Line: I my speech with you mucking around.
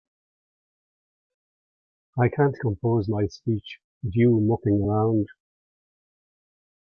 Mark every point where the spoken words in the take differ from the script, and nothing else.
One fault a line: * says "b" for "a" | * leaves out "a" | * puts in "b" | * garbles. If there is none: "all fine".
* puts in "can't compose"